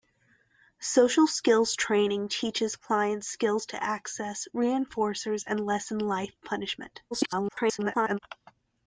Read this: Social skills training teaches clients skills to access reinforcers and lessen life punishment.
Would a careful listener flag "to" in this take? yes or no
no